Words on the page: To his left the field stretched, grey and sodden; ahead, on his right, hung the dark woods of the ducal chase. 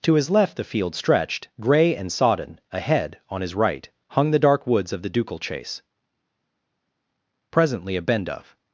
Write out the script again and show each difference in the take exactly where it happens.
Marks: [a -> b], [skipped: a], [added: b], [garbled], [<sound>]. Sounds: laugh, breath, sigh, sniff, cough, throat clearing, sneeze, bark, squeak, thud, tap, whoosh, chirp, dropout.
To his left the field stretched, grey and sodden; ahead, on his right, hung the dark woods of the ducal chase. [added: Presently a bend of]